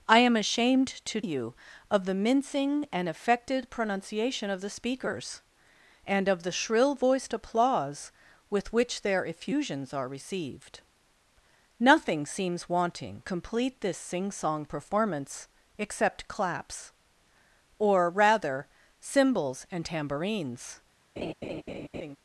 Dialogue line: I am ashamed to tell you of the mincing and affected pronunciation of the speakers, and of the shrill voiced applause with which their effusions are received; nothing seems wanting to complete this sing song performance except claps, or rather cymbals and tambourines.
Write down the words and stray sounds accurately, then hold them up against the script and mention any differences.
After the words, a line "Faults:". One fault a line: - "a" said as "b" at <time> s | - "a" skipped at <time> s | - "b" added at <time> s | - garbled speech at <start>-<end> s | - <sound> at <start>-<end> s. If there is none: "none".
I am ashamed to you of the mincing and affected pronunciation of the speakers, and of the shrill voiced applause with which their effusions are received; nothing seems wanting complete this sing song performance except claps, or rather cymbals and tambourines.
Faults:
- "tell" skipped at 1.2 s
- "to" skipped at 13.2 s
- laugh at 21.2-22.2 s